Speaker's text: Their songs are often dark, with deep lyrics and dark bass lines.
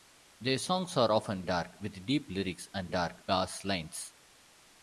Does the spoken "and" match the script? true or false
true